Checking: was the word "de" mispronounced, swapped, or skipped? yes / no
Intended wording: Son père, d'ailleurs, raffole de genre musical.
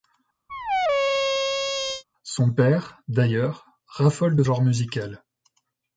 no